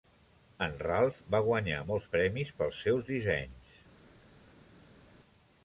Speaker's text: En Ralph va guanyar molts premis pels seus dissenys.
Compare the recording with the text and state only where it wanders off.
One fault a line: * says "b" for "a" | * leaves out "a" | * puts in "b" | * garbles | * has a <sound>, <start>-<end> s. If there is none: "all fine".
all fine